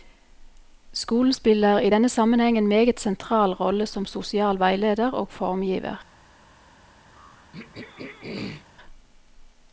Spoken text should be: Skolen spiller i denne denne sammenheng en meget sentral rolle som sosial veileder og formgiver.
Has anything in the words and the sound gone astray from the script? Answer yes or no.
yes